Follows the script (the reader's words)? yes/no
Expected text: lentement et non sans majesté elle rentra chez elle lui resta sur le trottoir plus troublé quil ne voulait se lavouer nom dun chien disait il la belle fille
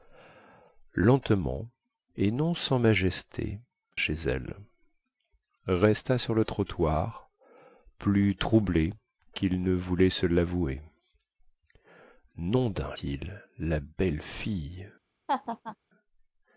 no